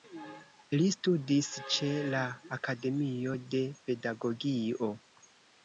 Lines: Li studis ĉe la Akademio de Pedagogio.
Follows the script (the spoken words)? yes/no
yes